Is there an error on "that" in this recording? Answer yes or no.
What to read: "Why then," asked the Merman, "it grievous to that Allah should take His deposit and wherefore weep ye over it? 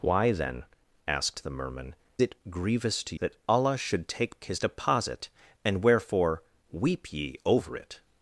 no